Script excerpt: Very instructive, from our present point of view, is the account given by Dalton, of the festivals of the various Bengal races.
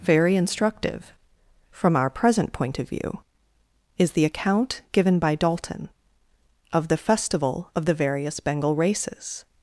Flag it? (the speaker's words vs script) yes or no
yes